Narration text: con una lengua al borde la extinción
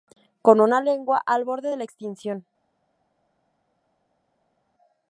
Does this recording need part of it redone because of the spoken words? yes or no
yes